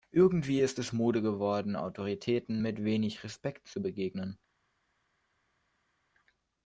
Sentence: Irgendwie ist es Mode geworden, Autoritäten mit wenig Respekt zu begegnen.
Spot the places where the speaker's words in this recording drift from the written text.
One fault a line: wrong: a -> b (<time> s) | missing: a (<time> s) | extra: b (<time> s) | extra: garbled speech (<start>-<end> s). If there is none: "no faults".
no faults